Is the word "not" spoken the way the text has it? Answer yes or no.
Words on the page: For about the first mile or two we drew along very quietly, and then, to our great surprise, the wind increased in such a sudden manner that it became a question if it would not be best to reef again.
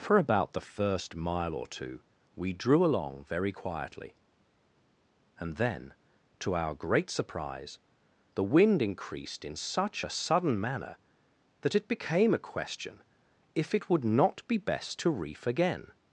yes